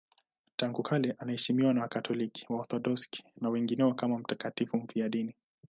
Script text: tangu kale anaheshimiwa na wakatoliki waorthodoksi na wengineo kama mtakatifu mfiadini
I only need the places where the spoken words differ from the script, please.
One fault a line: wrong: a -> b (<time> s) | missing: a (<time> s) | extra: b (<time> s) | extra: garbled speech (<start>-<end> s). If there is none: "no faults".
no faults